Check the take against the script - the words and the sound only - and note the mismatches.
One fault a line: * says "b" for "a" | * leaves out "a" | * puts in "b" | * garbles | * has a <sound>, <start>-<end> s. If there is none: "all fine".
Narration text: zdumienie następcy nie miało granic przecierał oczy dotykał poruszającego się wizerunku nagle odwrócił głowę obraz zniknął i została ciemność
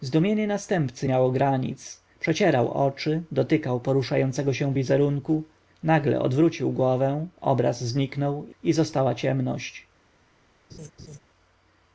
* leaves out "nie"
* has a laugh, 10.7-11.2 s